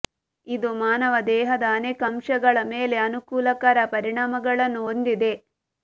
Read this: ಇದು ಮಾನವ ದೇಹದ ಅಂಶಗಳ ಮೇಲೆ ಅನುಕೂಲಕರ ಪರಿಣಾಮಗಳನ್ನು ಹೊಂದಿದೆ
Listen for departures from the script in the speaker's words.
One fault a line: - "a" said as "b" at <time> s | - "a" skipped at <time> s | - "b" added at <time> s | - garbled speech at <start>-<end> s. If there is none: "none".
- "ಅನೇಕ" added at 1.7 s